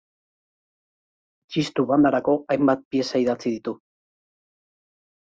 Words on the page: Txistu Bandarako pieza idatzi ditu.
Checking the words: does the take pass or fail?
fail